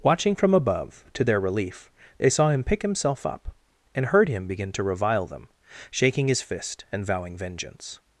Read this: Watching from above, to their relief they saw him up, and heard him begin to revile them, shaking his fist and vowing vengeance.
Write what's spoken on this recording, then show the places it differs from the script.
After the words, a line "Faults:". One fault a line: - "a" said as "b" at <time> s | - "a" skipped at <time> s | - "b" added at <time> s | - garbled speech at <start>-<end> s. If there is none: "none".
Watching from above, to their relief they saw him pick himself up, and heard him begin to revile them, shaking his fist and vowing vengeance.
Faults:
- "pick himself" added at 2.6 s